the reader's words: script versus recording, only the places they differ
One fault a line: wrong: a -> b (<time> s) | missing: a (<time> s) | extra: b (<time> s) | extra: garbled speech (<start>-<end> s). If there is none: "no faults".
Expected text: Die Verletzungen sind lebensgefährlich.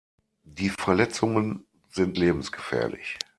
no faults